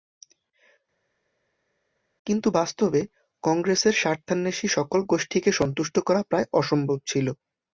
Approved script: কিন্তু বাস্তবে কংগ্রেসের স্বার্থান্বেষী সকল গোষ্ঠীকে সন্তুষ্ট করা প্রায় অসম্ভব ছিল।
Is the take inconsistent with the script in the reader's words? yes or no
no